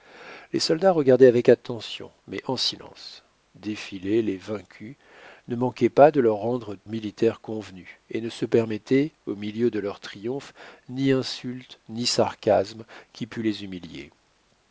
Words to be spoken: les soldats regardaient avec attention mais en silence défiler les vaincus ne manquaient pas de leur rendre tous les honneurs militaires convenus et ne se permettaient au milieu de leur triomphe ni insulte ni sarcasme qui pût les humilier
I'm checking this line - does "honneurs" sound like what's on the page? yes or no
no